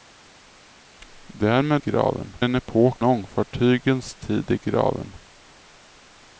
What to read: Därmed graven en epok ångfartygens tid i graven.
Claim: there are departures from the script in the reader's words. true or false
false